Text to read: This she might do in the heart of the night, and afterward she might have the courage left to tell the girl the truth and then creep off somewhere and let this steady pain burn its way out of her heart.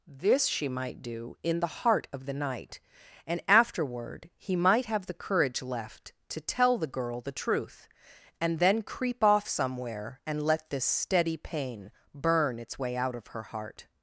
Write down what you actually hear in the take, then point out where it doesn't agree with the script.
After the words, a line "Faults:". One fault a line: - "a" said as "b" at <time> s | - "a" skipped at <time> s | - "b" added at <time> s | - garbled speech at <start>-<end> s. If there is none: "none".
This she might do in the heart of the night, and afterward he might have the courage left to tell the girl the truth and then creep off somewhere and let this steady pain burn its way out of her heart.
Faults:
- "she" said as "he" at 4.4 s